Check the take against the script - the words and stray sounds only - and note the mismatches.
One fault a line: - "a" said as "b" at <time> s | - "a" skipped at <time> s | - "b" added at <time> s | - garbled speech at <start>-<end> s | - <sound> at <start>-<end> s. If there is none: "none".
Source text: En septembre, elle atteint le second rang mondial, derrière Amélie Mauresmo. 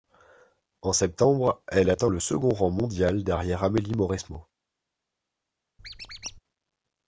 - squeak at 5.8-6.4 s